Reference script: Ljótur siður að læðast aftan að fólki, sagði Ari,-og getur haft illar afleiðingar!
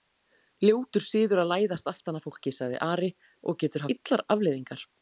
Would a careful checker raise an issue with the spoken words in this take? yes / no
yes